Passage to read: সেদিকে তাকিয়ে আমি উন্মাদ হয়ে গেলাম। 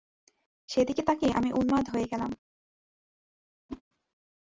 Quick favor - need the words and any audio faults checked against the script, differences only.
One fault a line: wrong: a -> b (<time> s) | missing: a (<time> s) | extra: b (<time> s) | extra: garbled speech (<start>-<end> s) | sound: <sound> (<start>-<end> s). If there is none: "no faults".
sound: whoosh (3.7-3.8 s)